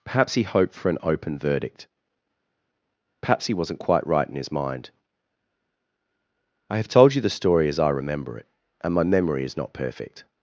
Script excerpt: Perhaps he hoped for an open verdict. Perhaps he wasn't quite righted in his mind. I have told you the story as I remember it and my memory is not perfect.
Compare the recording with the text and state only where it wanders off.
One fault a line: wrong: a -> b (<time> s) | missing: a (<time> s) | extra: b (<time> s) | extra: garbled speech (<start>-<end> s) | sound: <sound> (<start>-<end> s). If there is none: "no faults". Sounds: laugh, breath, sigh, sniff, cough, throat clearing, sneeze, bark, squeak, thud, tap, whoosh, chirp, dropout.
wrong: righted -> right (4.1 s)